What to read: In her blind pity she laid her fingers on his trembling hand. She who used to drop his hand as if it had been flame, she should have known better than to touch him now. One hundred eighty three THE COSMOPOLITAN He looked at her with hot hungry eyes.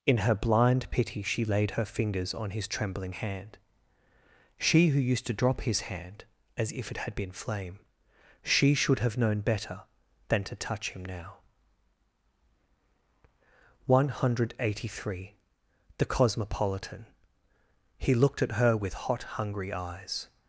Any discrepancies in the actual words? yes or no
no